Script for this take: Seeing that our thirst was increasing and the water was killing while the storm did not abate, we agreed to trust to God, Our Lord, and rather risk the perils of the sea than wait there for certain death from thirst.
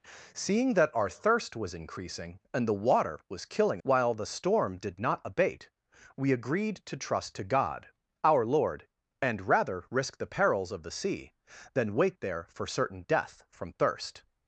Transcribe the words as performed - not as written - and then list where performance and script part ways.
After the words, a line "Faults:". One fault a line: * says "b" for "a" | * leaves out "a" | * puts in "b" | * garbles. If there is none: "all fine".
Seeing that our thirst was increasing and the water was killing while the storm did not abate, we agreed to trust to God, Our Lord, and rather risk the perils of the sea than wait there for certain death from thirst.
Faults:
all fine